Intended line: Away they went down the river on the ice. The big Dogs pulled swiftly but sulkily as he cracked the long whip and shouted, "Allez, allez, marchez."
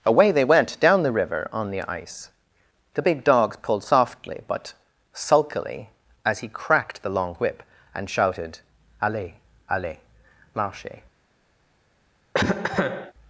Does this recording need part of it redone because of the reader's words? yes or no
yes